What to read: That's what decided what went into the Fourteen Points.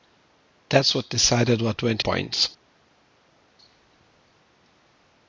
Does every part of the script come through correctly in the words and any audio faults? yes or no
no